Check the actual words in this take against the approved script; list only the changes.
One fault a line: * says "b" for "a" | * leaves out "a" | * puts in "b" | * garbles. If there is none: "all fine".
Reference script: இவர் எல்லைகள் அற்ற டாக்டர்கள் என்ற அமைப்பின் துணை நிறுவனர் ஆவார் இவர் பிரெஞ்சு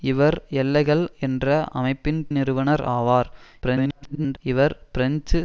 * leaves out "அற்ற டாக்டர்கள்"
* leaves out "துணை"
* garbles